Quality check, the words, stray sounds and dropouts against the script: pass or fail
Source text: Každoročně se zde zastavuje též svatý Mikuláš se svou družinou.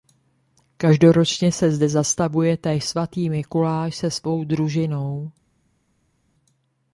pass